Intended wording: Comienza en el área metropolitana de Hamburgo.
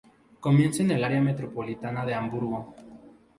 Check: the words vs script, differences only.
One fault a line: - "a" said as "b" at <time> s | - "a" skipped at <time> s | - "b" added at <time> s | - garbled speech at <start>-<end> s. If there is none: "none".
none